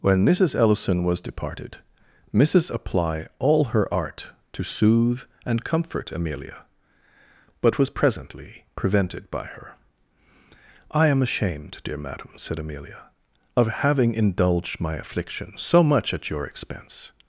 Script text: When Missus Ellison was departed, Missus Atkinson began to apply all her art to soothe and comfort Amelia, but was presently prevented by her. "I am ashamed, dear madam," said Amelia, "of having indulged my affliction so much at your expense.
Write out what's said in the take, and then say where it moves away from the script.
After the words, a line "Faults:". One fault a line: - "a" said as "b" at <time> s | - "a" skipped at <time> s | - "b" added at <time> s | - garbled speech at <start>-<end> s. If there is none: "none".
When Missus Ellison was departed, Missus apply all her art to soothe and comfort Amelia, but was presently prevented by her. "I am ashamed, dear madam," said Amelia, "of having indulged my affliction so much at your expense.
Faults:
- "Atkinson began to" skipped at 2.7 s